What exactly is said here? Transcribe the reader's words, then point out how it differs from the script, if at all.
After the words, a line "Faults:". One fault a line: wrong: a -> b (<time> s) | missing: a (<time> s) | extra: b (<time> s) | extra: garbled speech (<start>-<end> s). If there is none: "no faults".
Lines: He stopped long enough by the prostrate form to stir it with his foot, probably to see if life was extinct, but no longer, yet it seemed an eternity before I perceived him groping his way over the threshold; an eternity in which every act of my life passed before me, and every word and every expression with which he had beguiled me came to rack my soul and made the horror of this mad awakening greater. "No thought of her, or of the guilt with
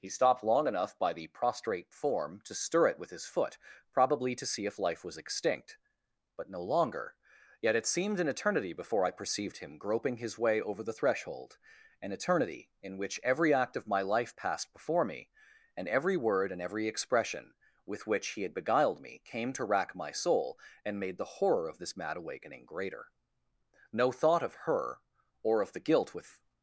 He stopped long enough by the prostrate form to stir it with his foot, probably to see if life was extinct, but no longer, yet it seemed an eternity before I perceived him groping his way over the threshold; an eternity in which every act of my life passed before me, and every word and every expression with which he had beguiled me came to rack my soul and made the horror of this mad awakening greater. "No thought of her, or of the guilt with
Faults:
no faults